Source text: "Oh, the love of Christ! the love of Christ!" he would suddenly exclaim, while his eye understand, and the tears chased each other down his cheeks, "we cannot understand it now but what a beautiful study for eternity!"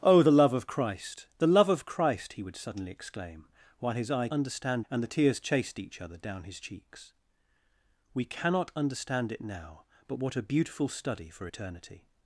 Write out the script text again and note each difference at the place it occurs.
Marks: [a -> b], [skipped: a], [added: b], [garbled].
"Oh, the love of Christ! the love of Christ!" he would suddenly exclaim, while his eye understand, and the tears chased each other down his cheeks, "we cannot understand it now but what a beautiful study for eternity!"